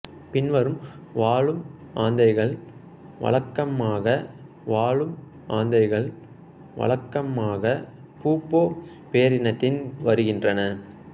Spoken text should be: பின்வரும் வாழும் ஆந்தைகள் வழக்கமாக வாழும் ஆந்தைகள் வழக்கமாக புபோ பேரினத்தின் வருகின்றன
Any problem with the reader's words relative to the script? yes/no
no